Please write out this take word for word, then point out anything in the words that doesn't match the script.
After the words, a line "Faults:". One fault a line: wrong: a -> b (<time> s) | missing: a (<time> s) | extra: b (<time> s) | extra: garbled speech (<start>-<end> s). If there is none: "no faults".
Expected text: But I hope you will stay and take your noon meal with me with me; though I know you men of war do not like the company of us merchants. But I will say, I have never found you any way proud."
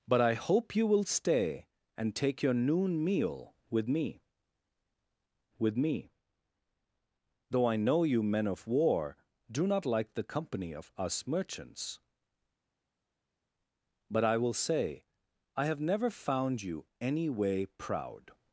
But I hope you will stay and take your noon meal with me with me; though I know you men of war do not like the company of us merchants. But I will say, I have never found you any way proud."
Faults:
no faults